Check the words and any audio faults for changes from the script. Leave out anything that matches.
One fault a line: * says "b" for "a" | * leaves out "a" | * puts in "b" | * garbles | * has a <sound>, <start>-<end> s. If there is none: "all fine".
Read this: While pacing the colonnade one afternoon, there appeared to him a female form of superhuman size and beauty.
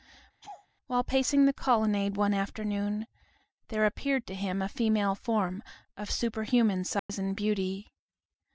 * has a laugh, 0.4-0.7 s
* has a dropout, 7.0-7.1 s